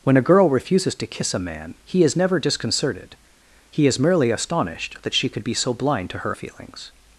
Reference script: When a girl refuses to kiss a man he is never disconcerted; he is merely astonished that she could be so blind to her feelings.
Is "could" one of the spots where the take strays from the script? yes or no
no